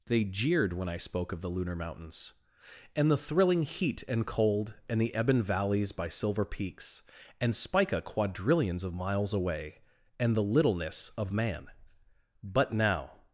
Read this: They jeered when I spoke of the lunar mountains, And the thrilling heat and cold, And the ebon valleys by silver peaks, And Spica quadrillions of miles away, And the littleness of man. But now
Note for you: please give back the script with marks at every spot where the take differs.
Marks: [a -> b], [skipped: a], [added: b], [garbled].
They jeered when I spoke of the lunar mountains, And the thrilling heat and cold, And the ebon valleys by silver peaks, And Spica quadrillions of miles away, And the littleness of man. But now